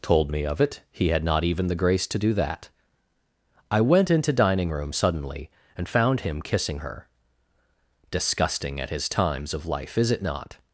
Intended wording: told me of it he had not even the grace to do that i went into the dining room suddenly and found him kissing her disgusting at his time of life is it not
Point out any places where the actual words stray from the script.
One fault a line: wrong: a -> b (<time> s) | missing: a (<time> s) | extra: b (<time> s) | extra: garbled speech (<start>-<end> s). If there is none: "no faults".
missing: the (4.3 s)
wrong: time -> times (9.1 s)